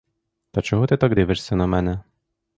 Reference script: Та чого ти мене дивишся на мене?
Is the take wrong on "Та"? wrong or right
right